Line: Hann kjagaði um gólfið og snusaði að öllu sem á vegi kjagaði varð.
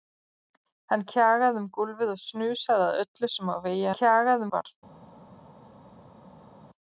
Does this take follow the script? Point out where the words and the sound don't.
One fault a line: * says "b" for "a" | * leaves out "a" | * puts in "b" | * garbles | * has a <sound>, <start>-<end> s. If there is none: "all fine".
all fine